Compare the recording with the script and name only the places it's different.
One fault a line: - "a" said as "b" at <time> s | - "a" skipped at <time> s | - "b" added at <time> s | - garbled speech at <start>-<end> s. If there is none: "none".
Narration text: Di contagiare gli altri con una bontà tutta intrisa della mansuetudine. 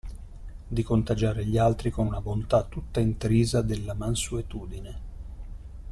none